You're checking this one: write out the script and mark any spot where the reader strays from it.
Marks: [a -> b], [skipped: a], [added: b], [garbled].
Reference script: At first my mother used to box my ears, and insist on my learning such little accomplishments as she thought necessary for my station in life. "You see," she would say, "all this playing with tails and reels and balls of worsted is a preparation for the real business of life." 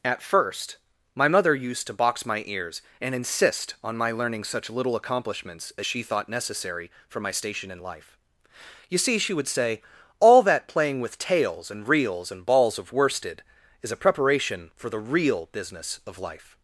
At first my mother used to box my ears, and insist on my learning such little accomplishments as she thought necessary for my station in life. "You see," she would say, "all [this -> that] playing with tails and reels and balls of worsted is a preparation for the real business of life."